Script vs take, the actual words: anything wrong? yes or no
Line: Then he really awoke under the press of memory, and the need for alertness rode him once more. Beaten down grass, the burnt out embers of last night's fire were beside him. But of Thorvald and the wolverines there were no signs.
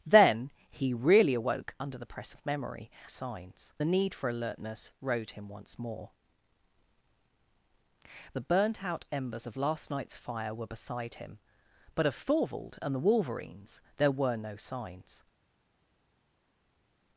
yes